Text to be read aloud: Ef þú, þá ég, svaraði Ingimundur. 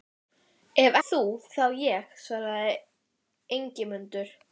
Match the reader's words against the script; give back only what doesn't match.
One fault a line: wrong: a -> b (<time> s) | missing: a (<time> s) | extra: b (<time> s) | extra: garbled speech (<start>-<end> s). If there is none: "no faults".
no faults